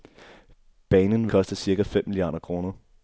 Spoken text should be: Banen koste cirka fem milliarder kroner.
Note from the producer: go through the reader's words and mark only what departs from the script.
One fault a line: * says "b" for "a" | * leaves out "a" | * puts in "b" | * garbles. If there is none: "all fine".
all fine